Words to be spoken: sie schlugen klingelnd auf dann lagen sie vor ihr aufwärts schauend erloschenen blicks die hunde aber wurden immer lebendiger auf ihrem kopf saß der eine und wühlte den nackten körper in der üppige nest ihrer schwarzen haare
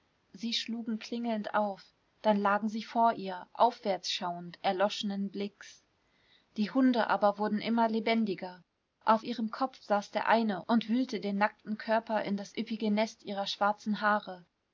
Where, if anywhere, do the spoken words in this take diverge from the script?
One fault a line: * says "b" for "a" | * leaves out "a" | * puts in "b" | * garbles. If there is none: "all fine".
* says "das" for "der"